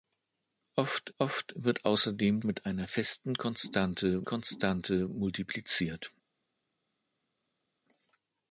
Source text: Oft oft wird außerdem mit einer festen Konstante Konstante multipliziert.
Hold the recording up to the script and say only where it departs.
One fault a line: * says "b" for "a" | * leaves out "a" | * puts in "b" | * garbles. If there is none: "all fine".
all fine